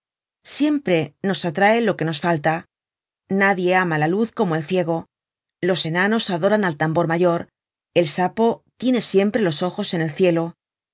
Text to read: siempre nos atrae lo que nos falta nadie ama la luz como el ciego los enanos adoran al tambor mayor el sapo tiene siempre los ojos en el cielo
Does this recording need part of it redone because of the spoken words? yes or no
no